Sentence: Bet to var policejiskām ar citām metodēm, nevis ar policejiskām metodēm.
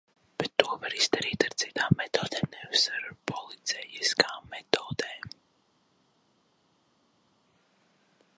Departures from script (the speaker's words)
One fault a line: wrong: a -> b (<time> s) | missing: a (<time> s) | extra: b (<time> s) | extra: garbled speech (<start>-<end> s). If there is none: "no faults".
wrong: policejiskām -> izdarīt (1.0 s)